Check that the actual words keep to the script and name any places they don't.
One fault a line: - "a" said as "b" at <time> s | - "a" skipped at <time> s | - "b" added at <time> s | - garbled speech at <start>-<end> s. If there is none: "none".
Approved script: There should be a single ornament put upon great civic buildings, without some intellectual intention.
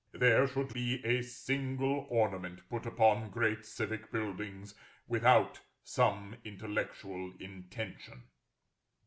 none